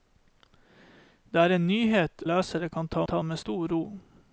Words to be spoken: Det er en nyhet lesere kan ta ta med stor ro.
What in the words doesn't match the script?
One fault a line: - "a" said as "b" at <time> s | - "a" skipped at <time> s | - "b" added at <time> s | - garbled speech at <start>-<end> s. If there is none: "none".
none